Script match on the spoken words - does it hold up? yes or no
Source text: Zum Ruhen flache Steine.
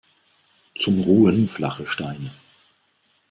yes